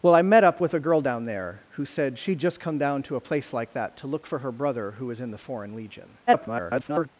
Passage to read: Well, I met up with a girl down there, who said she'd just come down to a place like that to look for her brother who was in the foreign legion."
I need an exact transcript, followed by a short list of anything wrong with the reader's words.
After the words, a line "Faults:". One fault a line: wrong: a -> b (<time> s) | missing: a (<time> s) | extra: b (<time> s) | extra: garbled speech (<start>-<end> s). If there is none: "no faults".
Well, I met up with a girl down there, who said she'd just come down to a place like that to look for her brother who was in the foreign legion." [garbled]
Faults:
extra: garbled speech (6.3-7.1 s)